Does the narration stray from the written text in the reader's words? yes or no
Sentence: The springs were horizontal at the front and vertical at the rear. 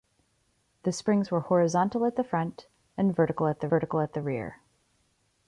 yes